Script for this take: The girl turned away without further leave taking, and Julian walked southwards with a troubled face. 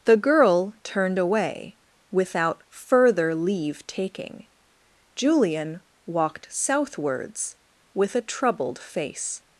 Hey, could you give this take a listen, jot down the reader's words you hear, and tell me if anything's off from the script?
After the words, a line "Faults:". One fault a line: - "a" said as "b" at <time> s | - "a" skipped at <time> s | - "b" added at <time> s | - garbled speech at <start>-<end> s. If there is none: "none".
The girl turned away without further leave taking, Julian walked southwards with a troubled face.
Faults:
- "and" skipped at 4.5 s